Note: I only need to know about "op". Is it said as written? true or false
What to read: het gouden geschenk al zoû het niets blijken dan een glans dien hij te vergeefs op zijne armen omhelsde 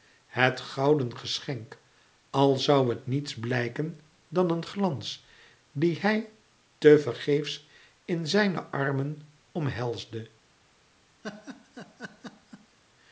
false